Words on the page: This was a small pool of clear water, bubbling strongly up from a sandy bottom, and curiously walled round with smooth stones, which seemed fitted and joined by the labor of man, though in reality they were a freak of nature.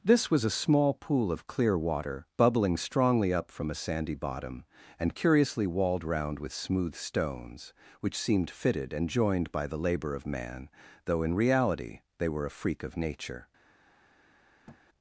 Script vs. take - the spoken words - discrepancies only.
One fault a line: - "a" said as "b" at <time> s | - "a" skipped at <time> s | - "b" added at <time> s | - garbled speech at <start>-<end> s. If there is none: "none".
none